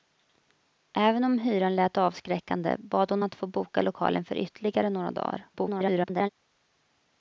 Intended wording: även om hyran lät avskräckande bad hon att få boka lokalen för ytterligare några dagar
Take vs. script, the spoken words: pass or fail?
fail